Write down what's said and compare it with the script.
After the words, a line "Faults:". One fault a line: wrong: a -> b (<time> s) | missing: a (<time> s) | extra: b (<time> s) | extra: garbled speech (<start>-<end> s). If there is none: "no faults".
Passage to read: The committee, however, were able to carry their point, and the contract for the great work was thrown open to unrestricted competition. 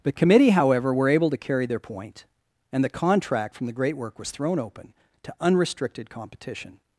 The committee, however, were able to carry their point, and the contract from the great work was thrown open to unrestricted competition.
Faults:
wrong: for -> from (3.5 s)